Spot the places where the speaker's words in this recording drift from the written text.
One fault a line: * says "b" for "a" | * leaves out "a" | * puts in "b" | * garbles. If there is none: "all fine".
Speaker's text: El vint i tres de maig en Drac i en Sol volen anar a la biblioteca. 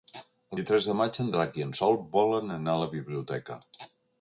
* leaves out "vint"